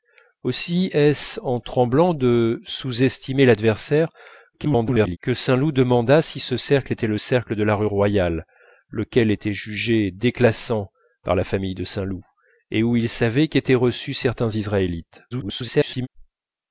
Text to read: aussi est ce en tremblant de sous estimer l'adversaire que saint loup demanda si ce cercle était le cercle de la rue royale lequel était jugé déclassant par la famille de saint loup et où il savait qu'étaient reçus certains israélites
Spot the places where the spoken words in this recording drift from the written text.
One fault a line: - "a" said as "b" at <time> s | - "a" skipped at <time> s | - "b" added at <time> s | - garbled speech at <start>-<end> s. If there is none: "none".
- garbled speech at 4.5-5.2 s
- garbled speech at 15.3-16.1 s